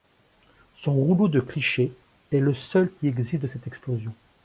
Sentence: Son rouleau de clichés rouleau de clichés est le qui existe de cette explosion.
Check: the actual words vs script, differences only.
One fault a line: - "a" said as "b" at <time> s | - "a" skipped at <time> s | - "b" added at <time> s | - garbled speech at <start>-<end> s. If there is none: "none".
- "rouleau de clichés" skipped at 1.9 s
- "seul" added at 2.5 s